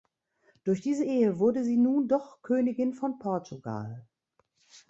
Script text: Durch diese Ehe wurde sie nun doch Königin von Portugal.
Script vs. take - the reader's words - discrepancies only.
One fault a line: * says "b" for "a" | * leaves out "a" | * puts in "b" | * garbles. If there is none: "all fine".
all fine